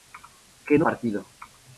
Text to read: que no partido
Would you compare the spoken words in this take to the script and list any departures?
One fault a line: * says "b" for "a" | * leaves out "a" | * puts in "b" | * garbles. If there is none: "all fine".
all fine